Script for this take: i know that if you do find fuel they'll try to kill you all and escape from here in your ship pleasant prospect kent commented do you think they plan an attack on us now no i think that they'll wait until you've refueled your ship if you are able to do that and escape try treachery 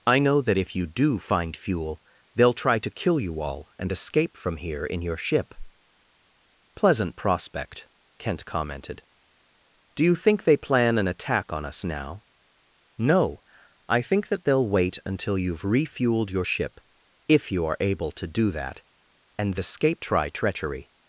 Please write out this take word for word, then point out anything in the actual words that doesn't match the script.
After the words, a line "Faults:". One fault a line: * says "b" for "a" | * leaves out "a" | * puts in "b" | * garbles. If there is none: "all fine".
i know that if you do find fuel they'll try to kill you all and escape from here in your ship pleasant prospect kent commented do you think they plan an attack on us now no i think that they'll wait until you've refueled your ship if you are able to do that and escape try treachery
Faults:
all fine